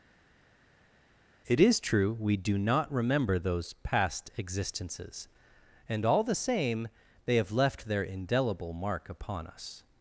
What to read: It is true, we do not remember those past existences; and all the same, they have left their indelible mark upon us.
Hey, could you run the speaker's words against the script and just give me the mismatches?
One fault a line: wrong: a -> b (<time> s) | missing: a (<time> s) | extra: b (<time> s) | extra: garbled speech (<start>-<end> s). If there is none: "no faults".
no faults